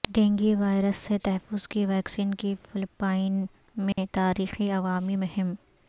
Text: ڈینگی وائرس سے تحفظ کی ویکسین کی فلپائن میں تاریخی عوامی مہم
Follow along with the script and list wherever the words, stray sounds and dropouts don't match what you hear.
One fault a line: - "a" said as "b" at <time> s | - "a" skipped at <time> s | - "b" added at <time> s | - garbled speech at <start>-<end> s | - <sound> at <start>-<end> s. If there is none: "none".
- dropout at 3.9-4.0 s